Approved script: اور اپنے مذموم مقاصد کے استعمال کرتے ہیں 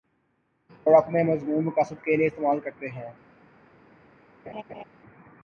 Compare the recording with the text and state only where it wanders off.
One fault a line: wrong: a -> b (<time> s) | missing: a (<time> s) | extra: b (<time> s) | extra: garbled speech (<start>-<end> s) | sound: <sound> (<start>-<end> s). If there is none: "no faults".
extra: لیے (2.2 s)
sound: laugh (4.5-4.8 s)